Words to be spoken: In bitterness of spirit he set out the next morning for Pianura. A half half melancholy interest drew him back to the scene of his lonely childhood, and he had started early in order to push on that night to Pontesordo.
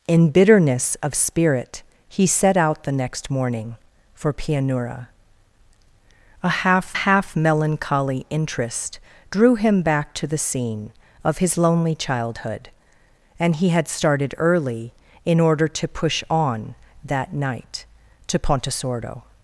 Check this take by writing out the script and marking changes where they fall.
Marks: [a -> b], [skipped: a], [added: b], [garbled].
In bitterness of spirit he set out the next morning for Pianura. A half half melancholy interest drew him back to the scene of his lonely childhood, and he had started early in order to push on that night to Pontesordo.